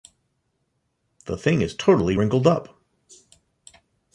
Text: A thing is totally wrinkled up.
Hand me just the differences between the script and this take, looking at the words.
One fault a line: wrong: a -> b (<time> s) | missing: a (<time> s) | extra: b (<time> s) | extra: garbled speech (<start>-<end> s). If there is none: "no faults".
wrong: A -> The (1.2 s)